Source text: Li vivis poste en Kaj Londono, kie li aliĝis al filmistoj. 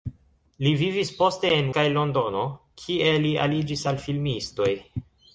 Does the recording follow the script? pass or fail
pass